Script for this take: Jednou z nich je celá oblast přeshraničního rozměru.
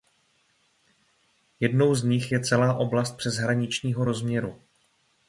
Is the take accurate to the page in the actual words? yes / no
yes